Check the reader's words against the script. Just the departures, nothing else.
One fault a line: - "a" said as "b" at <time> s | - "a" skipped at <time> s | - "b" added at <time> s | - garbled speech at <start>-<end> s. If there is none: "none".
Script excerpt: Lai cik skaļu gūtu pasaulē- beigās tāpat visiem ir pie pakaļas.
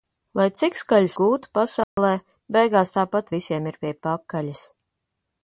none